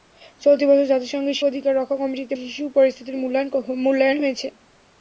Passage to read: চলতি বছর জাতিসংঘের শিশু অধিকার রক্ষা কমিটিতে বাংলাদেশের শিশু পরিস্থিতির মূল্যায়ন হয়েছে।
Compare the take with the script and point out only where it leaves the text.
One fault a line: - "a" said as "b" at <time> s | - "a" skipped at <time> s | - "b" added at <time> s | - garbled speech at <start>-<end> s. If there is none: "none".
- "শিশু" skipped at 1.4 s
- "বাংলাদেশের" skipped at 2.3 s